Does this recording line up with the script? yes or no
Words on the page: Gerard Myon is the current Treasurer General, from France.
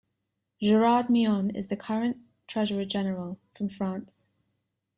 yes